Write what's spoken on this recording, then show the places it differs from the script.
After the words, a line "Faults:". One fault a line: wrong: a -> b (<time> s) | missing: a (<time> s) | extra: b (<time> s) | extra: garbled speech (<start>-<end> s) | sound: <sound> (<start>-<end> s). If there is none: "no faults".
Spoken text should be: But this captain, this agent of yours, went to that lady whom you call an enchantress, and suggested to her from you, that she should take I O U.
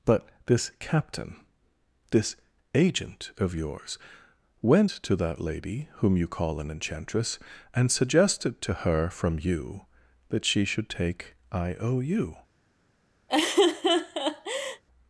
But this captain, this agent of yours, went to that lady whom you call an enchantress, and suggested to her from you, that she should take I O U.
Faults:
sound: laugh (13.3-14.8 s)